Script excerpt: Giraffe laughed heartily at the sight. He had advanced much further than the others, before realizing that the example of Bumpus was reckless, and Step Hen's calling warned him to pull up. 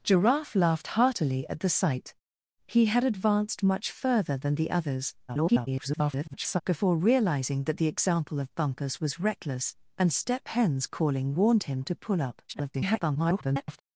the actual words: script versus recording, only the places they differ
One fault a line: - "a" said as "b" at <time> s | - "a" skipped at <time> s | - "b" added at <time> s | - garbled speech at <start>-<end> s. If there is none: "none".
- garbled speech at 5.3-6.6 s
- garbled speech at 12.5-13.8 s